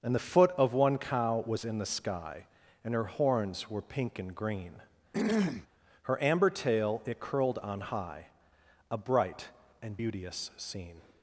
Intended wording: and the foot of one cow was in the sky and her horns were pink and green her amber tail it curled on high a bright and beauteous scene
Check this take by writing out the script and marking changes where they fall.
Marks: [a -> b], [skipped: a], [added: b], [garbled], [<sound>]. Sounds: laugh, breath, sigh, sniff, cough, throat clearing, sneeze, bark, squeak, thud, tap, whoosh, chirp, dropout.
and the foot of one cow was in the sky and her horns were pink and green [throat clearing] her amber tail it curled on high a bright and beauteous scene